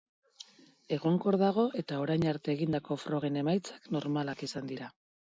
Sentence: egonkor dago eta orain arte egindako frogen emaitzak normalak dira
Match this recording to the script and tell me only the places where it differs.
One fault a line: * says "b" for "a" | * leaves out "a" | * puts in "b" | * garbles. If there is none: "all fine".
* puts in "izan"